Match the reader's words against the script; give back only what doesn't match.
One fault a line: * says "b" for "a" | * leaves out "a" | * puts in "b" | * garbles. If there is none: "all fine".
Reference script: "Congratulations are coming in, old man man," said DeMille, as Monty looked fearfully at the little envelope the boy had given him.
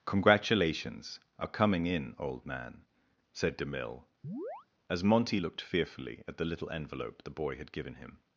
* leaves out "man"